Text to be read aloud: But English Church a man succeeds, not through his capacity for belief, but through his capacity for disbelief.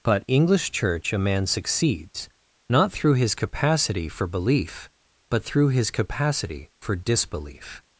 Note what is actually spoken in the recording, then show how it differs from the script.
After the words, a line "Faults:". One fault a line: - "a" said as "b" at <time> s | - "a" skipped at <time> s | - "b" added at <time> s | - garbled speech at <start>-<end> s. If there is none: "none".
But English Church a man succeeds, not through his capacity for belief, but through his capacity for disbelief.
Faults:
none